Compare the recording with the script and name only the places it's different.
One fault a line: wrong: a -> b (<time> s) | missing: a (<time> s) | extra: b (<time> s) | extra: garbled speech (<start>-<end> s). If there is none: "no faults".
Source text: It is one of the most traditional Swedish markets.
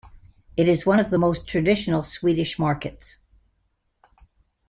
no faults